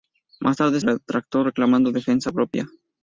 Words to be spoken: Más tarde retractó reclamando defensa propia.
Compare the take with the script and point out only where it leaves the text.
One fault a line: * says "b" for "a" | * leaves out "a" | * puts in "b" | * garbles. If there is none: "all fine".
all fine